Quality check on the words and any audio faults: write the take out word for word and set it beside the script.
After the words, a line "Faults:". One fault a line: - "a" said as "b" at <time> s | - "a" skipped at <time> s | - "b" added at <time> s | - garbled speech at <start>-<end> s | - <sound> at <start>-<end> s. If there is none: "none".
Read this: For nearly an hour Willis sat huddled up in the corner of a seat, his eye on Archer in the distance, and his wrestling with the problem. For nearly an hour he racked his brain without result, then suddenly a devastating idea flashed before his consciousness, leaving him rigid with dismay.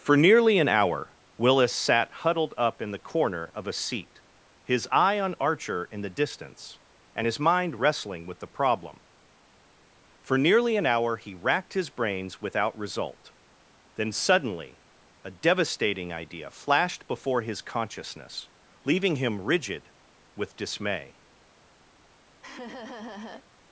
For nearly an hour Willis sat huddled up in the corner of a seat, his eye on Archer in the distance, and his mind wrestling with the problem. For nearly an hour he racked his brains without result, then suddenly a devastating idea flashed before his consciousness, leaving him rigid with dismay.
Faults:
- "mind" added at 7.4 s
- "brain" said as "brains" at 11.9 s
- laugh at 22.4-23.5 s